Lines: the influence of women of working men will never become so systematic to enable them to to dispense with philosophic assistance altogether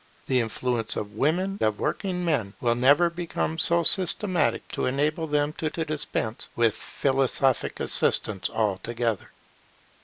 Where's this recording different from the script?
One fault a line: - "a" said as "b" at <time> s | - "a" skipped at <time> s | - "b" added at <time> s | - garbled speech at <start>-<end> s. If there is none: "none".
none